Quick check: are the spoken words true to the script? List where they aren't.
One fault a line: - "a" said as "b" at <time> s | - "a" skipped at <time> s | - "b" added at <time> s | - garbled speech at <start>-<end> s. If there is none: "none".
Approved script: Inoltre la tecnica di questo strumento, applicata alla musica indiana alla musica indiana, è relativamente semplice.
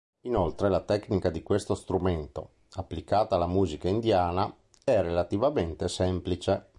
- "alla musica indiana" skipped at 4.5 s